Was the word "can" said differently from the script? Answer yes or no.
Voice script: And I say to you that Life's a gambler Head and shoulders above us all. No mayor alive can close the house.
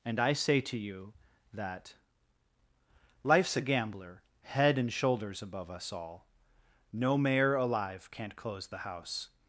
yes